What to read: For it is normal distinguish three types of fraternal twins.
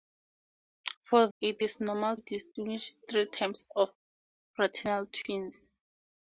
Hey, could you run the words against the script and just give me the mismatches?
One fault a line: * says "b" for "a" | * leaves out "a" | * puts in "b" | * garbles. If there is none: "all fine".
all fine